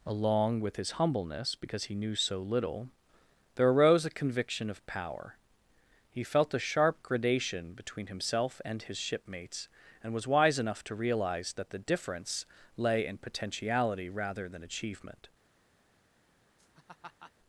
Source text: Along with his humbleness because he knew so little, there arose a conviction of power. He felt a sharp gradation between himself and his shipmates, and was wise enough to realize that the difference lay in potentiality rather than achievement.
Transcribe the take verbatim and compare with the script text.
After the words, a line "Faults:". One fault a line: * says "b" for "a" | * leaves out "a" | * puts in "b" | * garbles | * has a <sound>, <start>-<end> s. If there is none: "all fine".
Along with his humbleness because he knew so little, there arose a conviction of power. He felt a sharp gradation between himself and his shipmates, and was wise enough to realize that the difference lay in potentiality rather than achievement.
Faults:
* has a laugh, 16.6-17.3 s